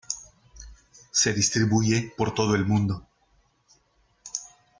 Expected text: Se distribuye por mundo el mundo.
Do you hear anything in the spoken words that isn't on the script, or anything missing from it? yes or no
yes